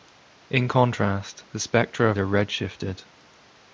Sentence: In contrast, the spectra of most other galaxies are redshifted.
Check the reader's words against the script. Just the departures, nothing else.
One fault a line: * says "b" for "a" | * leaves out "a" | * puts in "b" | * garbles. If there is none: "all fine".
* leaves out "most other galaxies"